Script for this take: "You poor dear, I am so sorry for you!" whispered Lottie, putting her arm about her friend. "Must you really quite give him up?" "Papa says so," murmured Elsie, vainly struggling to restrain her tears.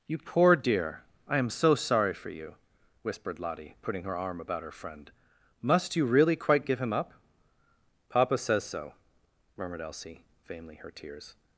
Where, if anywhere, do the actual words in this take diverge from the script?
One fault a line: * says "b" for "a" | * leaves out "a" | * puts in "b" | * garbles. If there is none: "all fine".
* leaves out "struggling to restrain"